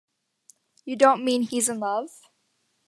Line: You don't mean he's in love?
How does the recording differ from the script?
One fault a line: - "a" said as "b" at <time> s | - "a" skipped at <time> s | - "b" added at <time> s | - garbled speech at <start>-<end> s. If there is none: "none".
none